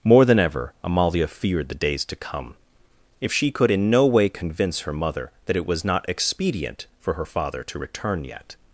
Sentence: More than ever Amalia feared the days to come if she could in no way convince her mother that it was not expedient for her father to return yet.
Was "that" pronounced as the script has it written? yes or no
yes